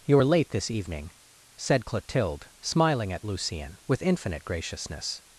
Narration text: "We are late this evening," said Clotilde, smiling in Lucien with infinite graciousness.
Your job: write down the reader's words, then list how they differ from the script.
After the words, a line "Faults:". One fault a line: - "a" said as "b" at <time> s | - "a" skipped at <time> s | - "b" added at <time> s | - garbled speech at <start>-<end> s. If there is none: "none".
"You are late this evening," said Clotilde, smiling at Lucien with infinite graciousness.
Faults:
- "We" said as "You" at 0.1 s
- "in" said as "at" at 3.1 s